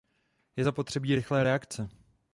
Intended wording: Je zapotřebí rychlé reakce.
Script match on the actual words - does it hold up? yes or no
yes